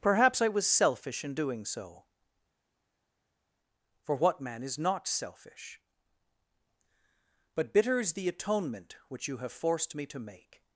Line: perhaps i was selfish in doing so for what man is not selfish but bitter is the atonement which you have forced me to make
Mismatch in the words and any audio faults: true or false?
false